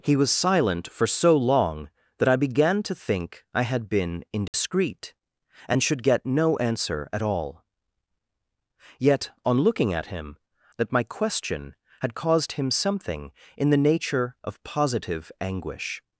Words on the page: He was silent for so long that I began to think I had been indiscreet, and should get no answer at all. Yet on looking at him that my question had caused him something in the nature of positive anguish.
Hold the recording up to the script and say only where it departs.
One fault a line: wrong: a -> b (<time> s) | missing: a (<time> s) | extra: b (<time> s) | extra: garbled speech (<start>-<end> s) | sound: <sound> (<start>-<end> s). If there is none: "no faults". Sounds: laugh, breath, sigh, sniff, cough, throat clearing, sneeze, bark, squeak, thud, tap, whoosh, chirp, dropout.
sound: dropout (4.5-4.5 s)